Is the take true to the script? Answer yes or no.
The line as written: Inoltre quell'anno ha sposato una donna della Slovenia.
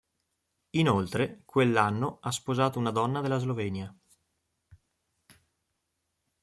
yes